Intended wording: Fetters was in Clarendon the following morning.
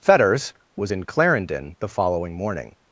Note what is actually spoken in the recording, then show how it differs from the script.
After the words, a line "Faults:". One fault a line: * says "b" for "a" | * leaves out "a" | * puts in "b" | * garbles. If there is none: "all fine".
Fetters was in Clarendon the following morning.
Faults:
all fine